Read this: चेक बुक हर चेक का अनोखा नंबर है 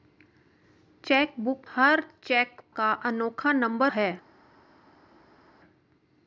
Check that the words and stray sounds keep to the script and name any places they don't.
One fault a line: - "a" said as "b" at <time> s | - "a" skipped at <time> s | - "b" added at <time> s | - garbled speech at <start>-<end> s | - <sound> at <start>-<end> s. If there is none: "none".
none